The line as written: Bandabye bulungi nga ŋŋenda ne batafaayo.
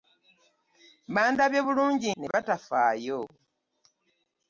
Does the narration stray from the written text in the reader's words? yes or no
yes